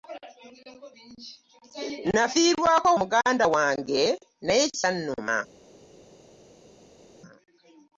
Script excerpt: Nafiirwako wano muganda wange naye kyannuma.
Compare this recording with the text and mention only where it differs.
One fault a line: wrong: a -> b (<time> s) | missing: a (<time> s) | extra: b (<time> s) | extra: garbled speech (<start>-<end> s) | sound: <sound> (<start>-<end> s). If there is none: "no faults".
missing: wano (2.9 s)